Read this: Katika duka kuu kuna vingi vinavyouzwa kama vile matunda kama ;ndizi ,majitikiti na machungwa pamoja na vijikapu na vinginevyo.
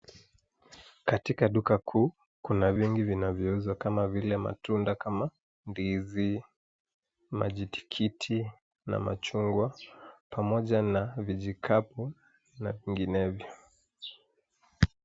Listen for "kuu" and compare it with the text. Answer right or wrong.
right